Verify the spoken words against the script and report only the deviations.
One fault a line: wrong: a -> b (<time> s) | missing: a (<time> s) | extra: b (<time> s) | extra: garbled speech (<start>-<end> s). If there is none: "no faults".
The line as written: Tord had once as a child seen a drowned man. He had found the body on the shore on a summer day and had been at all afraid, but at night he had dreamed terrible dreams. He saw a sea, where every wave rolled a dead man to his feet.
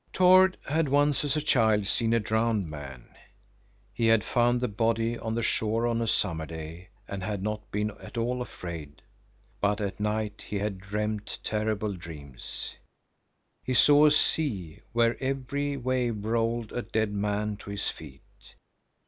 extra: not (7.4 s)